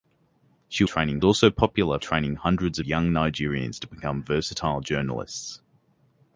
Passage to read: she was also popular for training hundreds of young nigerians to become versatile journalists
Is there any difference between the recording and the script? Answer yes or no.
yes